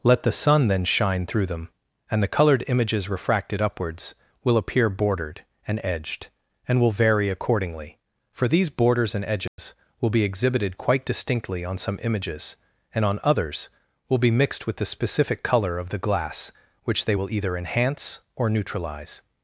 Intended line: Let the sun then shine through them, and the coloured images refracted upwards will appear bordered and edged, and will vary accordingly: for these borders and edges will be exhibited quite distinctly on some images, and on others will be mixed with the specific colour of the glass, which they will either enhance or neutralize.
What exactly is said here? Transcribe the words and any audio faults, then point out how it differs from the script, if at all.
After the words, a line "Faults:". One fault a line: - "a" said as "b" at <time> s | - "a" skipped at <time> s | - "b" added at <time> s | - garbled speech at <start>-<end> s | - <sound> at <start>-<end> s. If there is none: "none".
Let the sun then shine through them, and the coloured images refracted upwards will appear bordered and edged, and will vary accordingly: for these borders and edges will be exhibited quite distinctly on some images, and on others will be mixed with the specific colour of the glass, which they will either enhance or neutralize.
Faults:
- dropout at 9.5-9.6 s